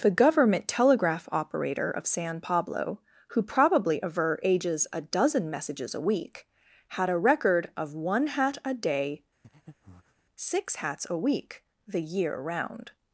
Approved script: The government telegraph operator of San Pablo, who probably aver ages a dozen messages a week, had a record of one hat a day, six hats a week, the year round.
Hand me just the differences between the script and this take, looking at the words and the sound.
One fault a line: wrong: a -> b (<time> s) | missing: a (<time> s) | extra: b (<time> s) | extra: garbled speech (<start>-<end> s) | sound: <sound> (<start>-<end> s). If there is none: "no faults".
sound: breath (9.4-10.2 s)